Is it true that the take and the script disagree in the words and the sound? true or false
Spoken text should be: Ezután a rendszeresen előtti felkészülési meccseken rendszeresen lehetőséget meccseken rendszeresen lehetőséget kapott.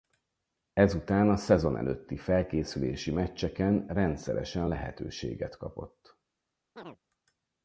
true